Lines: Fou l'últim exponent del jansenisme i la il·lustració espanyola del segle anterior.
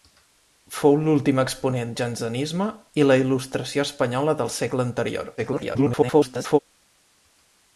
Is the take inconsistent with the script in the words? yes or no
yes